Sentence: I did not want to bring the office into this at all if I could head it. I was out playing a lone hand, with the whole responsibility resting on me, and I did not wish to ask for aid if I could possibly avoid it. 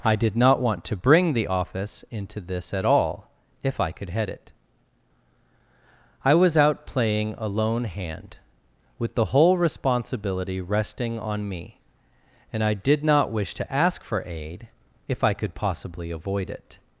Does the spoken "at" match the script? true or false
true